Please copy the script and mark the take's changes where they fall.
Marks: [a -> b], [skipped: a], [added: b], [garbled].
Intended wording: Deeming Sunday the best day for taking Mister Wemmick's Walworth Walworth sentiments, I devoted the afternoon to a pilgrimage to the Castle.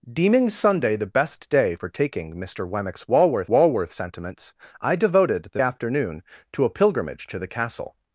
Deeming Sunday the best day for taking Mister Wemmick's Walworth Walworth sentiments, I devoted the afternoon to a pilgrimage to the Castle.